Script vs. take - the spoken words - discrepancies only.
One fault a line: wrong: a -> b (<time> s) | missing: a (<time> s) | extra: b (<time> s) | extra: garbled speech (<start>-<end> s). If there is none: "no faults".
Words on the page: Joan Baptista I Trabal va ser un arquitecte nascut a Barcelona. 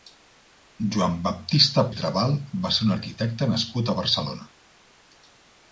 no faults